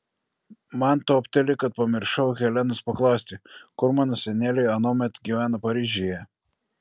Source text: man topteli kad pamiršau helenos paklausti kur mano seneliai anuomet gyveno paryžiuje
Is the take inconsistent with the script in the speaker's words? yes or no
no